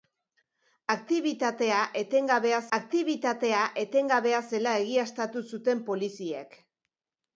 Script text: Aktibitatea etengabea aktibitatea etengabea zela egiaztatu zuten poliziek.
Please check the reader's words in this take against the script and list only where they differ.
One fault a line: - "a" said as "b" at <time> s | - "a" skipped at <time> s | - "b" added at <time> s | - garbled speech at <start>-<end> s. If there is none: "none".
none